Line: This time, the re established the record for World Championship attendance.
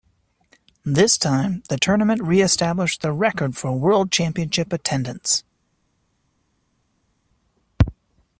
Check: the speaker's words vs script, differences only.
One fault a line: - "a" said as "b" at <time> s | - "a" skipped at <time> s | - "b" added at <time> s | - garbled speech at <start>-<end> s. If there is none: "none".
- "tournament" added at 1.7 s